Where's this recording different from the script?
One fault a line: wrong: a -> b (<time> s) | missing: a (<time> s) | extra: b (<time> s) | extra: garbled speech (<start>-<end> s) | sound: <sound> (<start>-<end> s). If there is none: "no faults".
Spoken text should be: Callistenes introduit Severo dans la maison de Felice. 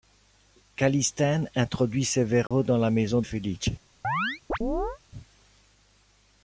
sound: dropout (2.5-2.5 s)
missing: de (3.2 s)
sound: chirp (4.0-5.0 s)